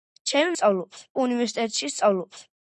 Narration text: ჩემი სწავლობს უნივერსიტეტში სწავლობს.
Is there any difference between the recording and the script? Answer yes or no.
no